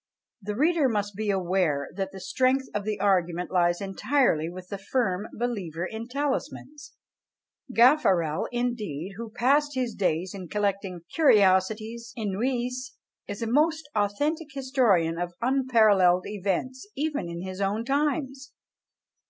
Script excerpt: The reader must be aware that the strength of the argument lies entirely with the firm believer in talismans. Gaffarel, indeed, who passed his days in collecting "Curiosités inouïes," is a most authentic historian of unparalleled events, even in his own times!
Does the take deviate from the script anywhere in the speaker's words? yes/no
no